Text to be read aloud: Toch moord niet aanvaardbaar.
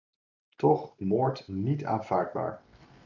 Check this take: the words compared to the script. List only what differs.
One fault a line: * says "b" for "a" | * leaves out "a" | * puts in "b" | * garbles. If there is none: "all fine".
all fine